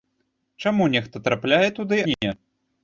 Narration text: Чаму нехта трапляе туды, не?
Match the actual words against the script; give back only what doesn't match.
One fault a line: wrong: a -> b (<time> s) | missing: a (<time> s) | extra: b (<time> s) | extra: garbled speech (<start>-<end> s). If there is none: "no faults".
no faults